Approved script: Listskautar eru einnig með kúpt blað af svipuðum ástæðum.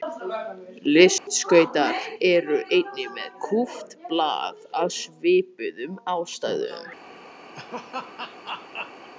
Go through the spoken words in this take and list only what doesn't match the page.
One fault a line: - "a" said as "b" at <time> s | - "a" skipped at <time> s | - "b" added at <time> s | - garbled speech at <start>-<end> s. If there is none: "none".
none